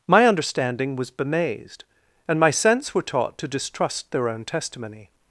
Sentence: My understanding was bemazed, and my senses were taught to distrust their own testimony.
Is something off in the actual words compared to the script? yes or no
yes